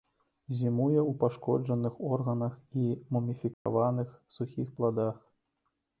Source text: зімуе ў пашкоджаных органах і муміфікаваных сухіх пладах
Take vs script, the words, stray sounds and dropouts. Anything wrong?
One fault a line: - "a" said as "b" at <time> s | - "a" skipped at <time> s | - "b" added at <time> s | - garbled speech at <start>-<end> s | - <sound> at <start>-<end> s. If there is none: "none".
- dropout at 3.5-3.7 s